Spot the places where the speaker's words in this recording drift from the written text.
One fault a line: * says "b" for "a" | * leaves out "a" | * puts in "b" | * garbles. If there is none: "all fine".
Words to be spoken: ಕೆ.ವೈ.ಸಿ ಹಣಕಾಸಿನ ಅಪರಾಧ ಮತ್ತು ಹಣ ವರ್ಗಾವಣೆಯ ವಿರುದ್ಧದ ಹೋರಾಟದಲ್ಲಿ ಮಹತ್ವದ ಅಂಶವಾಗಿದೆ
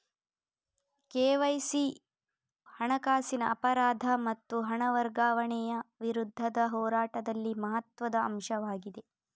all fine